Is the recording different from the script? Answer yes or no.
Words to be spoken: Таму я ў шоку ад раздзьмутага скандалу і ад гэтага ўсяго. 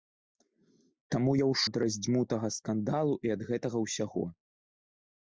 yes